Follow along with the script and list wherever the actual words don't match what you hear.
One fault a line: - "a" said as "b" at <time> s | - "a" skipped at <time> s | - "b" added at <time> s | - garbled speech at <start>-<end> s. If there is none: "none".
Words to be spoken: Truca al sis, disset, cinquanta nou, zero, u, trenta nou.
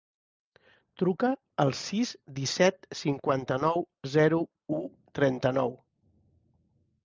none